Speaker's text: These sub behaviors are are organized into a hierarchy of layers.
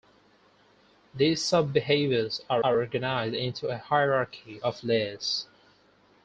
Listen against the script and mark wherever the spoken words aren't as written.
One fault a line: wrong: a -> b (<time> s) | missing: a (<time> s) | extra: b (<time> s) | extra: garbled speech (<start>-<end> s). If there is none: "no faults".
no faults